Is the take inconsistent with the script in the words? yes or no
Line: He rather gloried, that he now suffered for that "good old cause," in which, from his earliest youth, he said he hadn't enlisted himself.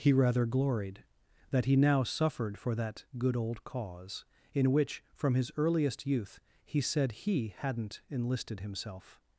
no